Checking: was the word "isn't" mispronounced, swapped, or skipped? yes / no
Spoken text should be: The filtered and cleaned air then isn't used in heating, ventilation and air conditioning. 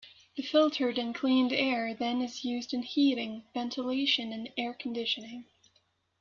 yes